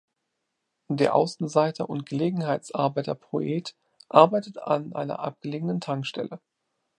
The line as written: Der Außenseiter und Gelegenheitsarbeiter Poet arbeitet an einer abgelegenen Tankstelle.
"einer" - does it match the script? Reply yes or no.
yes